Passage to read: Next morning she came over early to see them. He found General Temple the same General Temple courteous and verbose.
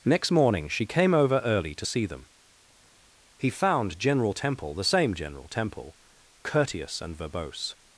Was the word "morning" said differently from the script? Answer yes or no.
no